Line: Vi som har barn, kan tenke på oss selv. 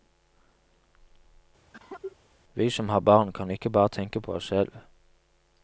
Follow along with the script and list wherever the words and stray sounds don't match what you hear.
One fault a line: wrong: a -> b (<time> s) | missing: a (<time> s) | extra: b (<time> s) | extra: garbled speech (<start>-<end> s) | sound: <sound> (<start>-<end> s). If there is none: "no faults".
sound: cough (1.7-2.2 s)
extra: ikke bare (3.5 s)